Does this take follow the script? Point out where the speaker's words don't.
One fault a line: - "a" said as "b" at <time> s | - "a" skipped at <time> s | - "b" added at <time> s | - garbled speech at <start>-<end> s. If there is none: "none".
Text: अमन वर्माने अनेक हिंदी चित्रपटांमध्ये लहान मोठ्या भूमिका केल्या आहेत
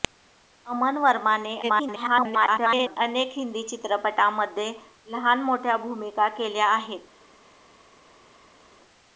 - garbled speech at 1.6-3.0 s